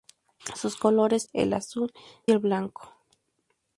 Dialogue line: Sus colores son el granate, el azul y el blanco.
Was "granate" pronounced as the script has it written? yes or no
no